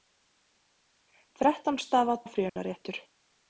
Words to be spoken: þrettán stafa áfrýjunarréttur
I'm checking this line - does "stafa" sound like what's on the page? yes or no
yes